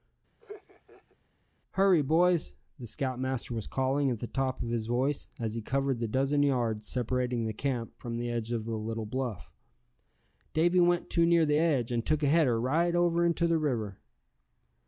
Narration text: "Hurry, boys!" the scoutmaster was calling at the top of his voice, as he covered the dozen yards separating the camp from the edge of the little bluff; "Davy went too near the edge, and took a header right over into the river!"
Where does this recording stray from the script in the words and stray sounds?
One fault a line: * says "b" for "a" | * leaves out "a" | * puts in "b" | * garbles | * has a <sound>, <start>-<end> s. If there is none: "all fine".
* has a laugh, 0.4-1.2 s